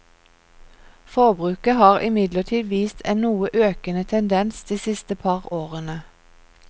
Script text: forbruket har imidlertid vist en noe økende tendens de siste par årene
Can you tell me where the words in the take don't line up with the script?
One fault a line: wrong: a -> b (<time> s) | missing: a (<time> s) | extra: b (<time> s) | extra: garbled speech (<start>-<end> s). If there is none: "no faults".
no faults